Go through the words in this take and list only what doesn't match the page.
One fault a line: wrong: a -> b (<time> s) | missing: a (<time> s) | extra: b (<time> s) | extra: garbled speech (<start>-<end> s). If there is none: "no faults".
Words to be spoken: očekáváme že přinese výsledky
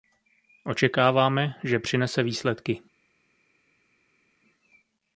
no faults